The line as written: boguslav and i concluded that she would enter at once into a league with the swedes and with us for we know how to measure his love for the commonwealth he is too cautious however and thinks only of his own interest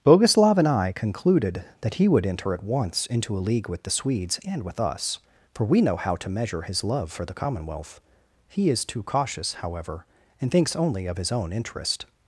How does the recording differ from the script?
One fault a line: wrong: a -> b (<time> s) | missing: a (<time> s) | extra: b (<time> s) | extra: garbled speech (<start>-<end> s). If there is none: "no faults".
wrong: she -> he (1.9 s)